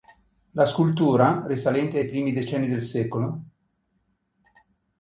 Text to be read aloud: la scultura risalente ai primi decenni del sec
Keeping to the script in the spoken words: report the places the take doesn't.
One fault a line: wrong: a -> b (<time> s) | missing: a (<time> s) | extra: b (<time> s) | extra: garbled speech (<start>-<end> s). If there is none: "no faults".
no faults